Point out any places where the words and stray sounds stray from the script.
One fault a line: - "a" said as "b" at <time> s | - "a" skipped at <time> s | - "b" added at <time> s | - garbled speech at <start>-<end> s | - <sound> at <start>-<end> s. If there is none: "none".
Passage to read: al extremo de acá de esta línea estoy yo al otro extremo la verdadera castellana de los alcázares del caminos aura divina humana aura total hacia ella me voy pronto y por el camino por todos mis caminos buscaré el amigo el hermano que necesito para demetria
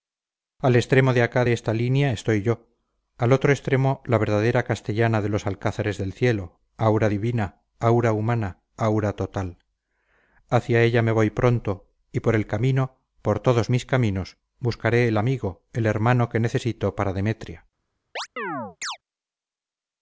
- "caminos" said as "cielo" at 6.1 s
- "aura" added at 7.8 s
- chirp at 18.2-19.0 s